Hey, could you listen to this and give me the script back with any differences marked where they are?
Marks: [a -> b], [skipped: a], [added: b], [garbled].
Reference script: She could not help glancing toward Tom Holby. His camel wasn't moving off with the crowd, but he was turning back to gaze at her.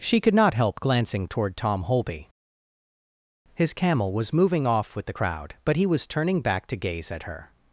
She could not help glancing toward Tom Holby. His camel [wasn't -> was] moving off with the crowd, but he was turning back to gaze at her.